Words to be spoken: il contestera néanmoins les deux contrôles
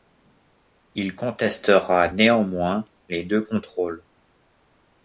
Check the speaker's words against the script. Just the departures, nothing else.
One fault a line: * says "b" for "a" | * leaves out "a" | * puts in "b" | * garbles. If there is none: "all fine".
all fine